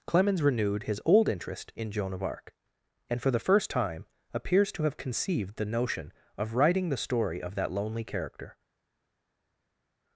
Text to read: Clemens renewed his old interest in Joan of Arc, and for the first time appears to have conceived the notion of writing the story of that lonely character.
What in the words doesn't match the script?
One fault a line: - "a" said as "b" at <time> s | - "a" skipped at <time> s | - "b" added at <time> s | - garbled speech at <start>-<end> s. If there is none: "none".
none